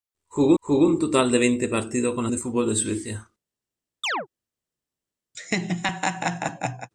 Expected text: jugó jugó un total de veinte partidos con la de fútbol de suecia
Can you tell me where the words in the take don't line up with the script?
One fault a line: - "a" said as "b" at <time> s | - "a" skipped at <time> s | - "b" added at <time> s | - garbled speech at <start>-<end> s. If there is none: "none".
none